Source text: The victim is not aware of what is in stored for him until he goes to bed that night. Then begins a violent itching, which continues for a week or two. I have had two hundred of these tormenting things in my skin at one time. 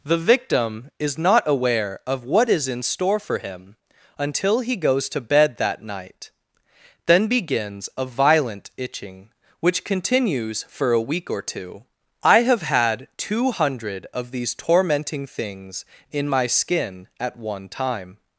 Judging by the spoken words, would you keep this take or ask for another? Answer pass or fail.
fail